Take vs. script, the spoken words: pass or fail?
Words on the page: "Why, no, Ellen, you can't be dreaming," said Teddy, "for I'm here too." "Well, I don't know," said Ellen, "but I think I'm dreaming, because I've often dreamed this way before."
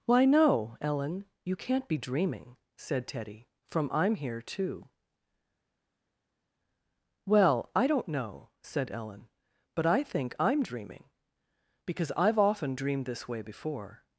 fail